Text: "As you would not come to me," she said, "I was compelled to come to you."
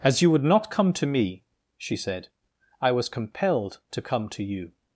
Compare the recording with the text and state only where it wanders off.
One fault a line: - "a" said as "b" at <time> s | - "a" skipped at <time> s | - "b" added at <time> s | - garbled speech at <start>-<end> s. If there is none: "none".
none